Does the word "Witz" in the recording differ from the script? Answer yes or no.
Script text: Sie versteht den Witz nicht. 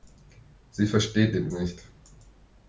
yes